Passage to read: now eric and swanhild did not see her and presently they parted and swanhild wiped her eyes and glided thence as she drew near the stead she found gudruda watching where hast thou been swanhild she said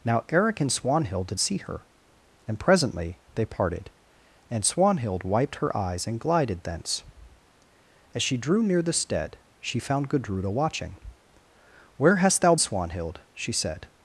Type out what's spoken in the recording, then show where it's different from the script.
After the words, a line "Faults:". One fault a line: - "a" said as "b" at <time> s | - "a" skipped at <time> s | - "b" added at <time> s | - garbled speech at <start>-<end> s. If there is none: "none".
now eric and swanhild did see her and presently they parted and swanhild wiped her eyes and glided thence as she drew near the stead she found gudruda watching where hast thou swanhild she said
Faults:
- "not" skipped at 1.4 s
- "been" skipped at 12.6 s